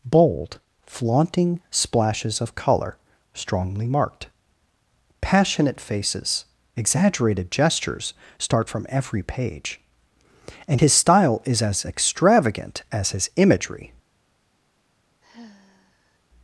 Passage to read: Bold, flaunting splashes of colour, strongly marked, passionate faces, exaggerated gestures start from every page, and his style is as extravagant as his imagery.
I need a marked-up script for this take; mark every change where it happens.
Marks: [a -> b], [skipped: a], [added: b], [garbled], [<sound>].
Bold, flaunting splashes of colour, strongly marked, passionate faces, exaggerated gestures start from every page, and his style is as extravagant as his imagery. [sigh]